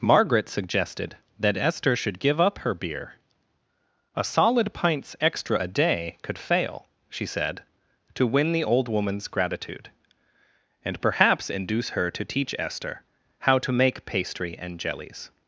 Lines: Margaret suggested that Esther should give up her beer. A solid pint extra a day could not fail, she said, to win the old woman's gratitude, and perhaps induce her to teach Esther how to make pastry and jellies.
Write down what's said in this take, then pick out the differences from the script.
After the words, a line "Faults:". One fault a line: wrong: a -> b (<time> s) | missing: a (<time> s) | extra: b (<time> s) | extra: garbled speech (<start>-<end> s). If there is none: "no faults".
Margaret suggested that Esther should give up her beer. A solid pints extra a day could fail, she said, to win the old woman's gratitude, and perhaps induce her to teach Esther how to make pastry and jellies.
Faults:
wrong: pint -> pints (4.7 s)
missing: not (6.4 s)